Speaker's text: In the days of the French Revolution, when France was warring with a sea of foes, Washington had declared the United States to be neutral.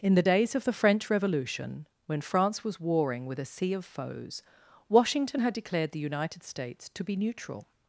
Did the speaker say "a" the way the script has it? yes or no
yes